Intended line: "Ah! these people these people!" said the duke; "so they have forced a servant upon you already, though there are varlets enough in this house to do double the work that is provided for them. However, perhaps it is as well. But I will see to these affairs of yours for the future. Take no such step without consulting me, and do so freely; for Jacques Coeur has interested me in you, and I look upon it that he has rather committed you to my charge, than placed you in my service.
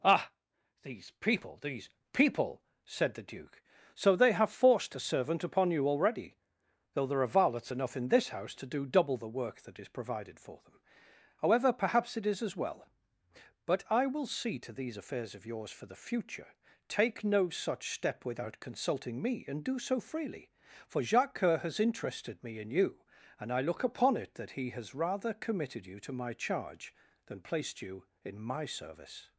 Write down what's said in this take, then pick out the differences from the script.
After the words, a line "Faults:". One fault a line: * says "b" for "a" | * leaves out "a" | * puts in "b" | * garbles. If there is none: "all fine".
"Ah! these people these people!" said the duke; "so they have forced a servant upon you already, though there are varlets enough in this house to do double the work that is provided for them. However, perhaps it is as well. But I will see to these affairs of yours for the future. Take no such step without consulting me, and do so freely; for Jacques Coeur has interested me in you, and I look upon it that he has rather committed you to my charge, than placed you in my service.
Faults:
all fine